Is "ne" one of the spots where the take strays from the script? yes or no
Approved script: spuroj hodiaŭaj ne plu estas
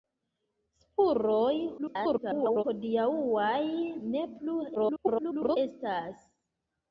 no